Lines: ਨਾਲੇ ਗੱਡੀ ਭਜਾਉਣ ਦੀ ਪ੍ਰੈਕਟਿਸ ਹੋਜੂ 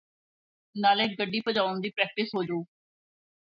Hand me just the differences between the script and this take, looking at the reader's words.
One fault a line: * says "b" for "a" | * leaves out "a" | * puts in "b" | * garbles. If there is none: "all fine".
all fine